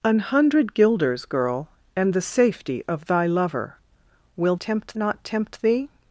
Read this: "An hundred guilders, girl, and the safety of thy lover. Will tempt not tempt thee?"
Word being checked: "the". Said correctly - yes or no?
yes